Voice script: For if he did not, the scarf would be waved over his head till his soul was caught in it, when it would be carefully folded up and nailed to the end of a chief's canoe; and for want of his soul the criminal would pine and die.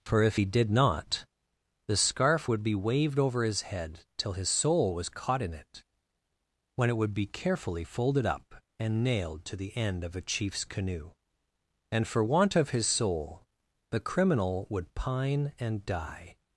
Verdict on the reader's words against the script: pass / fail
pass